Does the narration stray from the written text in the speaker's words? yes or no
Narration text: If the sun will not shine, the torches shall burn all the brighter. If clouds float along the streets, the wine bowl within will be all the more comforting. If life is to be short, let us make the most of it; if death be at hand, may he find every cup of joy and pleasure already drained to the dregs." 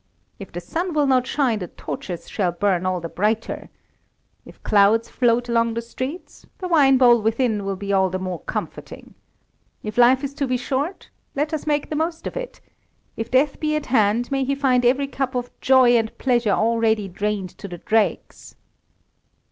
no